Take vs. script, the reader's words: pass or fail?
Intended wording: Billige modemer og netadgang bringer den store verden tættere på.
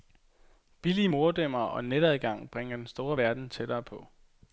pass